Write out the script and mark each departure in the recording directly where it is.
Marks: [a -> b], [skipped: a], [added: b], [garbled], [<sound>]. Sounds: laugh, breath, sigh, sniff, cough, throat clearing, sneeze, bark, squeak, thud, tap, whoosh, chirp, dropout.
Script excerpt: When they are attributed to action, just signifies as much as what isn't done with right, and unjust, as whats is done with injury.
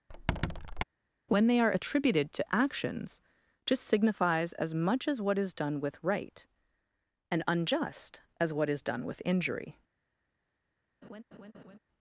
[squeak] When they are attributed to [action, -> actions] just signifies as much as what [isn't -> is] done with right, and unjust, as [whats -> what] is done with injury. [laugh]